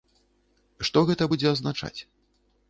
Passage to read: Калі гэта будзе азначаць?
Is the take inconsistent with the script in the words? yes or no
yes